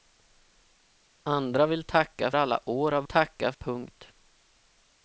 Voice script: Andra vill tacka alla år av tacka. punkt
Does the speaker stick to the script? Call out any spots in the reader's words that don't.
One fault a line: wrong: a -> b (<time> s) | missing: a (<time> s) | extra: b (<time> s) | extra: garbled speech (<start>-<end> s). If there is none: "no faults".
no faults